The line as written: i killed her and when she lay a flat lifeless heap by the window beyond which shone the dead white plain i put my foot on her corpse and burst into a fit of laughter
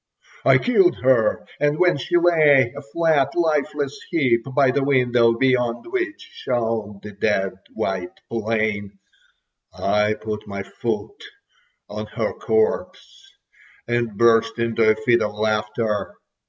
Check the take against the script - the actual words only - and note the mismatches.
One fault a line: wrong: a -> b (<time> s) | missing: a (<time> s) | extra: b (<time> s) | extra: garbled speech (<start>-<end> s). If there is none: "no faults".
no faults